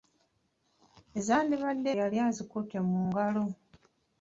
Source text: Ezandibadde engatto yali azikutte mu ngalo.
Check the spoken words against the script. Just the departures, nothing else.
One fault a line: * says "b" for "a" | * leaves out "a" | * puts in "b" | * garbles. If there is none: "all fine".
* leaves out "engatto"